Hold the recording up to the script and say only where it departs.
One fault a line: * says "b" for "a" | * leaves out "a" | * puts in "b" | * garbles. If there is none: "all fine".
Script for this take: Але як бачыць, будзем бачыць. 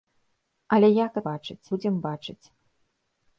all fine